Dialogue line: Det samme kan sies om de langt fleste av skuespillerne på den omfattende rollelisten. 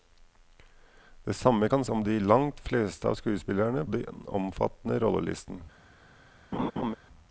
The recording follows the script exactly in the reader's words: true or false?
false